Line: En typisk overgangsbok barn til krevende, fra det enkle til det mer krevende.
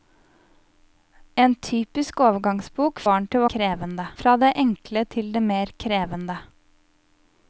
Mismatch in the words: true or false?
false